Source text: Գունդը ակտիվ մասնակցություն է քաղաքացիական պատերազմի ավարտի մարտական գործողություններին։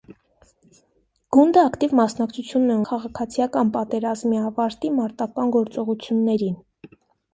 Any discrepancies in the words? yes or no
no